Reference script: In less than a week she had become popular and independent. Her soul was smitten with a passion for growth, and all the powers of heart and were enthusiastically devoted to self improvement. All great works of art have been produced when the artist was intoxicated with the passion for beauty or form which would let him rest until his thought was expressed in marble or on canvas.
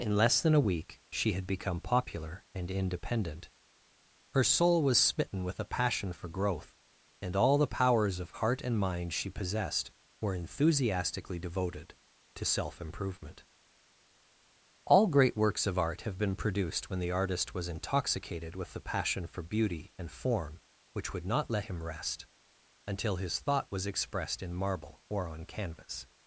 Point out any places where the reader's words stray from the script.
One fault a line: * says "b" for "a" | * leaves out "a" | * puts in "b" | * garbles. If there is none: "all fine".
* puts in "mind she possessed"
* says "and" for "or"
* puts in "not"